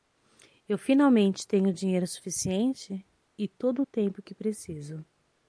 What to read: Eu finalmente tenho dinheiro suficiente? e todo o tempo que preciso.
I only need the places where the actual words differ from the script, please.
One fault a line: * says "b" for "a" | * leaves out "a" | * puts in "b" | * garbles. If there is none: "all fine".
all fine